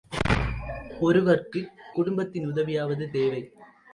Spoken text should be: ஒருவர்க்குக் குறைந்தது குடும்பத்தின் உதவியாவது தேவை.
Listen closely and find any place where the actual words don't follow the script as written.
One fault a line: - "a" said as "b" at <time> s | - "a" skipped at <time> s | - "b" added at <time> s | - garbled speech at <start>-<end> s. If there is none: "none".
- "குறைந்தது" skipped at 1.7 s